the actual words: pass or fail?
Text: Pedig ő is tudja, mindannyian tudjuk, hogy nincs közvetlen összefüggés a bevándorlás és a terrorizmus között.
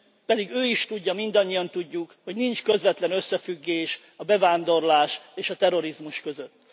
pass